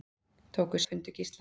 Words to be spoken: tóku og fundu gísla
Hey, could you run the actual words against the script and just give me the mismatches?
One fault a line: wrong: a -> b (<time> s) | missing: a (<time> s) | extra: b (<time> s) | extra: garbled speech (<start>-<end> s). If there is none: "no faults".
no faults